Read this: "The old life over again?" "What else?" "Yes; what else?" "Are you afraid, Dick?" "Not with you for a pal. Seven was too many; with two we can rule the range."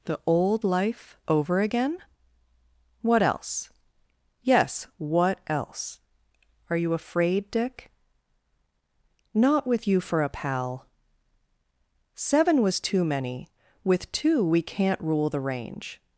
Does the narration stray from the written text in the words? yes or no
yes